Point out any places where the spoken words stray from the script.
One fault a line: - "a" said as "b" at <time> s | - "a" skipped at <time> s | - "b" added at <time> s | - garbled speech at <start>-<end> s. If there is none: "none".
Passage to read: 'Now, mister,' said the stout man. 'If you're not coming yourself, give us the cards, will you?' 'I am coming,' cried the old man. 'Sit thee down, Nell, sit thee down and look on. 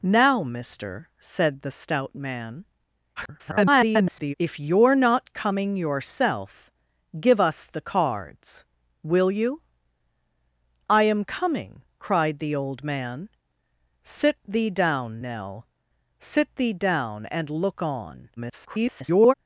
- garbled speech at 3.2-4.3 s
- garbled speech at 18.4-19.3 s